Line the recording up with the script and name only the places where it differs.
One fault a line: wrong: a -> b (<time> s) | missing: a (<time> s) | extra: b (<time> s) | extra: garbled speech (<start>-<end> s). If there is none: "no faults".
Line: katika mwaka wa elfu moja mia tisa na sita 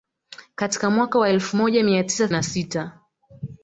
no faults